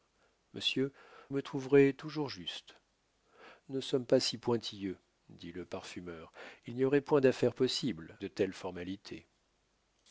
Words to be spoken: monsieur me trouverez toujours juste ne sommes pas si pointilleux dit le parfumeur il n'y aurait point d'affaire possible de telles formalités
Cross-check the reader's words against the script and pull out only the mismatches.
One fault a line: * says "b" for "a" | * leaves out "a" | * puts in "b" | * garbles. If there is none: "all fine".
all fine